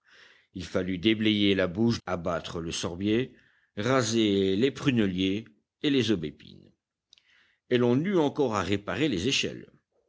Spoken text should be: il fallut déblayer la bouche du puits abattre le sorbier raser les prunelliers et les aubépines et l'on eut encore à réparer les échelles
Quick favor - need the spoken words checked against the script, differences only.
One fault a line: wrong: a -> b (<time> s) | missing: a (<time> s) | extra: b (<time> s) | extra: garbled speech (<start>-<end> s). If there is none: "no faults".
missing: du puits (2.0 s)